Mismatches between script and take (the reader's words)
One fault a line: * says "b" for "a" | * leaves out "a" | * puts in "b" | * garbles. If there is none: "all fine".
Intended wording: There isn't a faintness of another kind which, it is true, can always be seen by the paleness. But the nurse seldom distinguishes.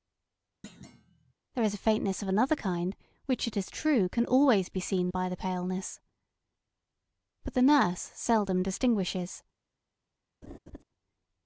* says "is" for "isn't"